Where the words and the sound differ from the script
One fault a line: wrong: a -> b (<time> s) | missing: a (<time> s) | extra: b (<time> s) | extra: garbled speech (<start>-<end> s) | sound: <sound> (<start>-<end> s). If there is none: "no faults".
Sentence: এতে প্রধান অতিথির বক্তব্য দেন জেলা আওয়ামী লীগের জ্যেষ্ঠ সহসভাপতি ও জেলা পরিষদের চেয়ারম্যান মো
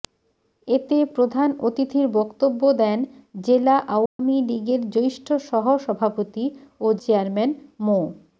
sound: dropout (4.1-4.2 s)
missing: জেলা পরিষদের (7.0 s)